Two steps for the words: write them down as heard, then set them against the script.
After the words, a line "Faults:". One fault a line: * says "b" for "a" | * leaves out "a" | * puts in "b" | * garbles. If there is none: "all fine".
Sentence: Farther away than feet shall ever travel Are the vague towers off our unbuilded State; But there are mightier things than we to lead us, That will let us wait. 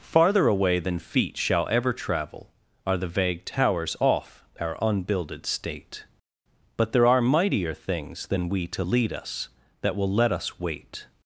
Farther away than feet shall ever travel Are the vague towers off our unbuilded State; But there are mightier things than we to lead us, That will let us wait.
Faults:
all fine